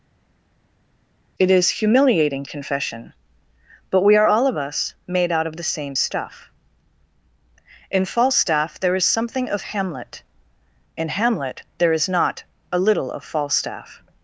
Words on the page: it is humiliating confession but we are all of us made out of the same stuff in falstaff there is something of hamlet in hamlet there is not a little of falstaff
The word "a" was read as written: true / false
true